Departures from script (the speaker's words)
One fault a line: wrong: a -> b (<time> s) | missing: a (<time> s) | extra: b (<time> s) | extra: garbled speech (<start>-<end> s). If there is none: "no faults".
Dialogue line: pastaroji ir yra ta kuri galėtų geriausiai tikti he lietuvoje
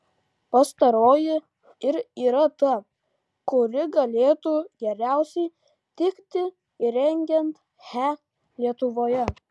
extra: įrengiant (6.9 s)